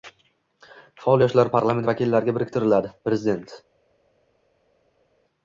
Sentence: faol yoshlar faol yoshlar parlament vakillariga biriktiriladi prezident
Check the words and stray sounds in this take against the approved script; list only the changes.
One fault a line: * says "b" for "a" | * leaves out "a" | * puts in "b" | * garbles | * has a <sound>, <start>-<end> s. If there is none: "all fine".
* leaves out "faol yoshlar"